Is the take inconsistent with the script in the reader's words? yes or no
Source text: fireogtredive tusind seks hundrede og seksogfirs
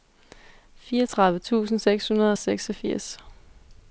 no